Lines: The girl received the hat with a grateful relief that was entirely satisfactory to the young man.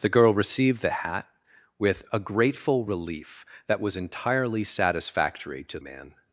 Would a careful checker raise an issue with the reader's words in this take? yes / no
yes